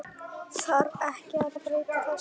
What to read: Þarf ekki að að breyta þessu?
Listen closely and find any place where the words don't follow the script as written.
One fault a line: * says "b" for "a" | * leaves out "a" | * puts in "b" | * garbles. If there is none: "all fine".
all fine